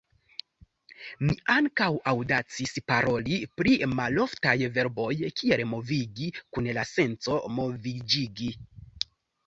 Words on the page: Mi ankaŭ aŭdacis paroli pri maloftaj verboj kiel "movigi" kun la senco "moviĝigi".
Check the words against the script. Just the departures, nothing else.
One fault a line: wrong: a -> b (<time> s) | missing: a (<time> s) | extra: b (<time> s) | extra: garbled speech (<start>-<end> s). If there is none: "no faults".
no faults